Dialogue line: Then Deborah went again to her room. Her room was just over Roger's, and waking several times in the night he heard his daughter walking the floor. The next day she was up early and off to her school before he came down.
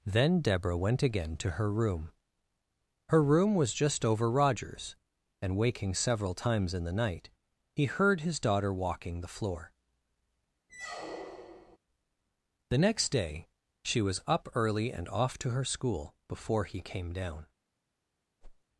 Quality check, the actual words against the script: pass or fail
pass